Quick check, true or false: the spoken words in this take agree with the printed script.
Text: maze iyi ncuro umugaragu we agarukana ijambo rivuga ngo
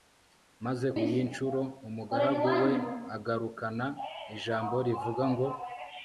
true